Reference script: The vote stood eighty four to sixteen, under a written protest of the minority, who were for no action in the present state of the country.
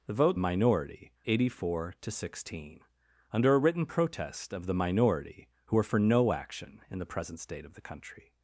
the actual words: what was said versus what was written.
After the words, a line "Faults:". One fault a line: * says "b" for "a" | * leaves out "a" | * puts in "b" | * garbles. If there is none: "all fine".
The vote minority eighty four to sixteen, under a written protest of the minority, who were for no action in the present state of the country.
Faults:
* says "minority" for "stood"